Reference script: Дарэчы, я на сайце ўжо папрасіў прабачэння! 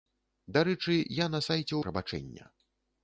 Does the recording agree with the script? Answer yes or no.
no